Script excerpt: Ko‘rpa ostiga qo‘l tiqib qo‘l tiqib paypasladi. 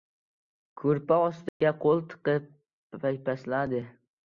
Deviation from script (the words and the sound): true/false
true